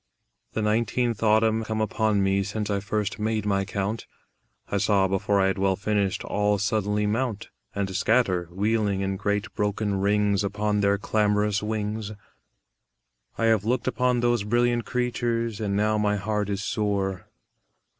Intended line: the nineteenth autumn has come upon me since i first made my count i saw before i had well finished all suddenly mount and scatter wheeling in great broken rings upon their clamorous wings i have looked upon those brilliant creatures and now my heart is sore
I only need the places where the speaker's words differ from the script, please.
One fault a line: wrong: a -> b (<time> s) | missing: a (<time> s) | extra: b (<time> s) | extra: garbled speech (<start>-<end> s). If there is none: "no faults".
missing: has (1.6 s)